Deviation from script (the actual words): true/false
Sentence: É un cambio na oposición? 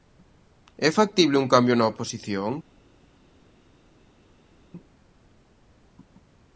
true